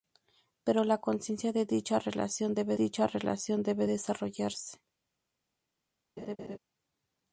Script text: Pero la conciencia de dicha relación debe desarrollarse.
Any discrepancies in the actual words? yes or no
yes